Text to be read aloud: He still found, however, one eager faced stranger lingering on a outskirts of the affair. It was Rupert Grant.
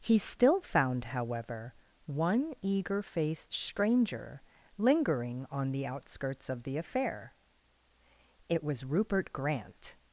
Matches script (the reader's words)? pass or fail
fail